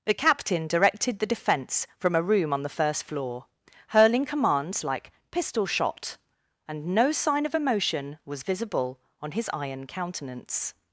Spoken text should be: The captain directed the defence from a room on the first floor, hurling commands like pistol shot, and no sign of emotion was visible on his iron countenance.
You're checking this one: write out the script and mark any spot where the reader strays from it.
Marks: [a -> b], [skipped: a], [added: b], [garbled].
The captain directed the defence from a room on the first floor, hurling commands like pistol shot, and no sign of emotion was visible on his iron countenance.